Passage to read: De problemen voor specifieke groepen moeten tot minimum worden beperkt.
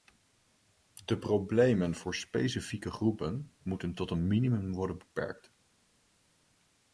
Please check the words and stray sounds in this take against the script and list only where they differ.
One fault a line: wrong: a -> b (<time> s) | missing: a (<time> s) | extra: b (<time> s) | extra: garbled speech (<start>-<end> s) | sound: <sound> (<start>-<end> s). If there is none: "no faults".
extra: een (4.1 s)